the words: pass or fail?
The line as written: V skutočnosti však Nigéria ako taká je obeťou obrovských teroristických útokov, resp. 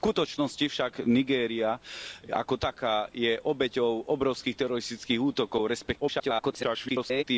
fail